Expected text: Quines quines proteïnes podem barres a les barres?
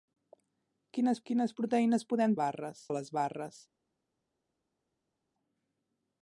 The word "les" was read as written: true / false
true